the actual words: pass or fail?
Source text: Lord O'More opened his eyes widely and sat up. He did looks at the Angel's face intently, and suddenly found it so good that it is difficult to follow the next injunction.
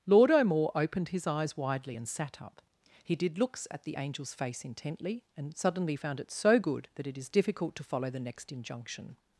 pass